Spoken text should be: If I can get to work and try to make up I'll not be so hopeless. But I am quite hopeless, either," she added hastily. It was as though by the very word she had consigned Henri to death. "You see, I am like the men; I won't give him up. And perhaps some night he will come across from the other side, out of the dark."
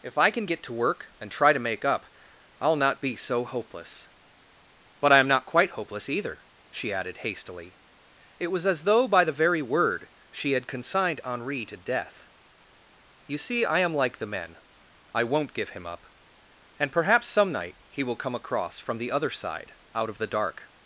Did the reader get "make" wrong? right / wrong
right